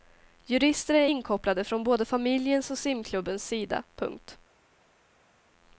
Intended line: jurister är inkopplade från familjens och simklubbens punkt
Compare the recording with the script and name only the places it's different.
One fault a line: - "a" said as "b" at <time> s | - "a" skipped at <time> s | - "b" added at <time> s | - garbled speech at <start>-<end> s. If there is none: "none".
- "både" added at 1.8 s
- "sida" added at 3.5 s